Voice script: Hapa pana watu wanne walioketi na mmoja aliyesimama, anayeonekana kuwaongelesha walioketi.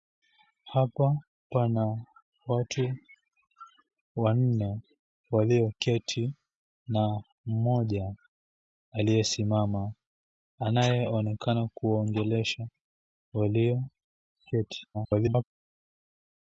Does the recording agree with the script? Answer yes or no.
no